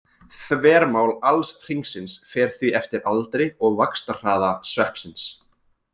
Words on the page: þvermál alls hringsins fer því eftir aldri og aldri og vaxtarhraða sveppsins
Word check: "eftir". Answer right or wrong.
right